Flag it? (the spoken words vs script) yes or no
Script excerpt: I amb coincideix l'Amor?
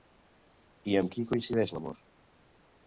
yes